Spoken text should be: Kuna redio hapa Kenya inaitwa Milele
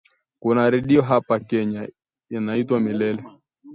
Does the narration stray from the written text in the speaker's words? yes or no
no